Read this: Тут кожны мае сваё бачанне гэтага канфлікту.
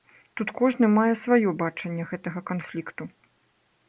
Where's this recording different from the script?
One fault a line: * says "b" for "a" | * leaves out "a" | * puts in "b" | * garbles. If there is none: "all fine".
all fine